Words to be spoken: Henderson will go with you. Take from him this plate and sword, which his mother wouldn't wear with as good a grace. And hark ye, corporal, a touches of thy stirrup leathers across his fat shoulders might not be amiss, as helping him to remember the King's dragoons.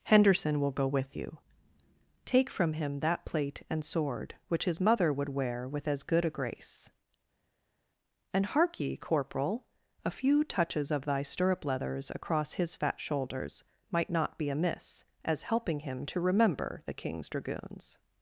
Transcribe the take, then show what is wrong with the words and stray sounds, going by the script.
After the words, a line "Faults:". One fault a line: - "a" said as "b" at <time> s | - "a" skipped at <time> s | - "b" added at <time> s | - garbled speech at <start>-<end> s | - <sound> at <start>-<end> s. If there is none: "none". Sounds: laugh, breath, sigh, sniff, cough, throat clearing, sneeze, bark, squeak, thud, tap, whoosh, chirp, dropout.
Henderson will go with you. Take from him that plate and sword, which his mother would wear with as good a grace. And hark ye, corporal, a few touches of thy stirrup leathers across his fat shoulders might not be amiss, as helping him to remember the King's dragoons.
Faults:
- "this" said as "that" at 3.0 s
- "wouldn't" said as "would" at 5.1 s
- "few" added at 10.1 s